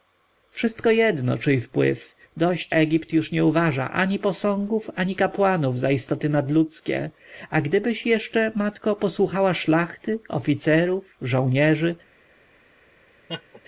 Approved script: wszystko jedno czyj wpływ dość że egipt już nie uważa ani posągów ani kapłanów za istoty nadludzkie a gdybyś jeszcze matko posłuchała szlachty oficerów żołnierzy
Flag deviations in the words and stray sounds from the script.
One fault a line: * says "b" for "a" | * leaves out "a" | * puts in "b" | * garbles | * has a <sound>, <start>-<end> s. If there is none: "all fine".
* leaves out "że"
* has a laugh, 13.3-13.6 s